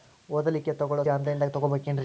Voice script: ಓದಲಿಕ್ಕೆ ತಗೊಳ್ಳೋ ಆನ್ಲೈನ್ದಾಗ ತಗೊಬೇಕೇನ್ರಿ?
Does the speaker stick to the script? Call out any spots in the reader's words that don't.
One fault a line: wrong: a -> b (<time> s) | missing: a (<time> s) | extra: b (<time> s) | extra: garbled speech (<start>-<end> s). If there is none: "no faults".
no faults